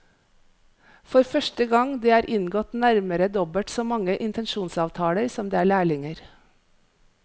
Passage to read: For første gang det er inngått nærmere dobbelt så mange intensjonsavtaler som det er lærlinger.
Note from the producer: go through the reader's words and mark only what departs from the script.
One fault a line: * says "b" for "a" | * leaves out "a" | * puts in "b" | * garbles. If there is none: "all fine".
all fine